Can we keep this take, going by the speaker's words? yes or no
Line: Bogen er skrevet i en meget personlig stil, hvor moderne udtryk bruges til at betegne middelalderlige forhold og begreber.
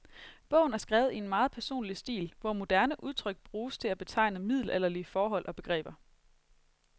yes